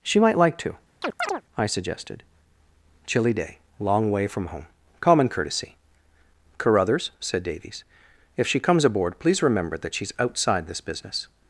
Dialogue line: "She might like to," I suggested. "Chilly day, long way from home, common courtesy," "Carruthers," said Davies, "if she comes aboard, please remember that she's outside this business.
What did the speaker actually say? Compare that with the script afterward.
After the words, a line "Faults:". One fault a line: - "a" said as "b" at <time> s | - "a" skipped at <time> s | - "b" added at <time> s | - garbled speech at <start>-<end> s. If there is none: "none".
"She might like to," I suggested. "Chilly day, long way from home, common courtesy," "Carruthers," said Davies, "if she comes aboard, please remember that she's outside this business.
Faults:
none